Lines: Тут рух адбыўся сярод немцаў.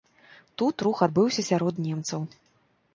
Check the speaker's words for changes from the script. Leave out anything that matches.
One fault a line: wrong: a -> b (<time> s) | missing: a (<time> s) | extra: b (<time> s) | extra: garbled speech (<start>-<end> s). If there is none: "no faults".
no faults